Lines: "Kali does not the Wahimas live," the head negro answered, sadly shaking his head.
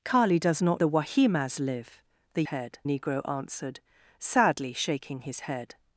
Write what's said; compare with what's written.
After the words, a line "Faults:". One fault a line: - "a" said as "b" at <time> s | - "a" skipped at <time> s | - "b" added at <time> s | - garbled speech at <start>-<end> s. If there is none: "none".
"Kali does not the Wahimas live," the head negro answered, sadly shaking his head.
Faults:
none